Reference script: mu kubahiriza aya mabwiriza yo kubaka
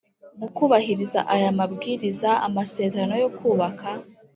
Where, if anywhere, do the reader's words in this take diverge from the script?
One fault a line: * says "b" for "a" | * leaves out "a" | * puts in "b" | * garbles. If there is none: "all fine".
* puts in "amasezerano"